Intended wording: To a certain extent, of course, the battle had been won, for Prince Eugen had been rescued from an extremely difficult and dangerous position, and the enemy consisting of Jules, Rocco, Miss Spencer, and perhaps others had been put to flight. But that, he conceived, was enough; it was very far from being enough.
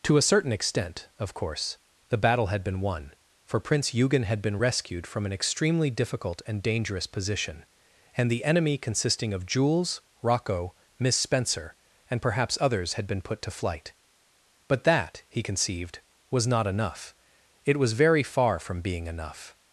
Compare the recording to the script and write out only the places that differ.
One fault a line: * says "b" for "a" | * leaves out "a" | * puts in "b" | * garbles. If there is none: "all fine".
* puts in "not"